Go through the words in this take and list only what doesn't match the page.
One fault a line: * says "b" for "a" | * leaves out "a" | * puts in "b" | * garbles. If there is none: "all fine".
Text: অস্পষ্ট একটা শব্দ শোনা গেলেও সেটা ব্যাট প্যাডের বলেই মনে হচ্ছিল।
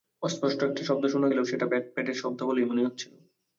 * puts in "শব্দ"